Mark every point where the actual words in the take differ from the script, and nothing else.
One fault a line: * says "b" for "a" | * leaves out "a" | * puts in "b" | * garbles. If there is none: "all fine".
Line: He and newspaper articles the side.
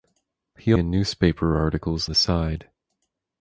all fine